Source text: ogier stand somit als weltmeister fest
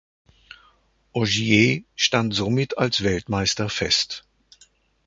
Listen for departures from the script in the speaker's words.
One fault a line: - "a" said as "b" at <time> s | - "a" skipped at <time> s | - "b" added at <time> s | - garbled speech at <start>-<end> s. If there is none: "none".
none